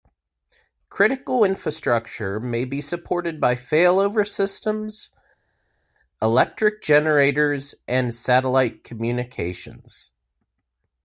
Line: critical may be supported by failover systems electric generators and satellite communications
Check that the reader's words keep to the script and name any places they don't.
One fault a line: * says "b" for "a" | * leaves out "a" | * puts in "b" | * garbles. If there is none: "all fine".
* puts in "infrastructure"